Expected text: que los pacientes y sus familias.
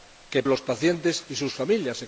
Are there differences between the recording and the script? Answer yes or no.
no